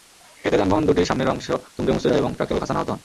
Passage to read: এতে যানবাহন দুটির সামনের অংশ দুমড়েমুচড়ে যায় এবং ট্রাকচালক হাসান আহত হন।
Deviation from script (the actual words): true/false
false